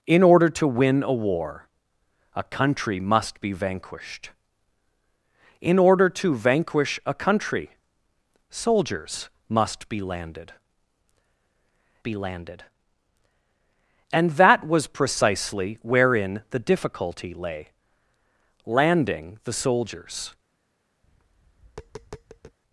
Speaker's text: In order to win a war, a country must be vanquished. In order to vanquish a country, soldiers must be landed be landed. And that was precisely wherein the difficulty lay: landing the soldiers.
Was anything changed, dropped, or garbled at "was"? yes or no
no